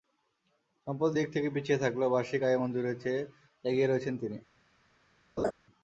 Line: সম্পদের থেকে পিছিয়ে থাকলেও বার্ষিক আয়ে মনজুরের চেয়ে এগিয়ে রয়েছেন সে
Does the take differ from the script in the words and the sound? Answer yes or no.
yes